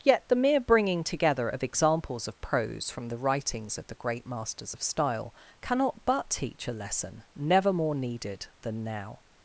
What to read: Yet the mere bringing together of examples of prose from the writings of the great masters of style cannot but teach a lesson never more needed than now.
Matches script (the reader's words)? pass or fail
pass